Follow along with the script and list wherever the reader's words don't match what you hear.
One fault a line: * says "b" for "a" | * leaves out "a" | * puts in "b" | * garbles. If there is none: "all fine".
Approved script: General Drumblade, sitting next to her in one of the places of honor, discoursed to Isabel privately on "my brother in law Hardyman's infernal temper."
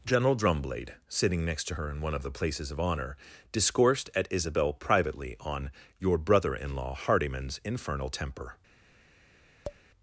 * says "at" for "to"
* says "your" for "my"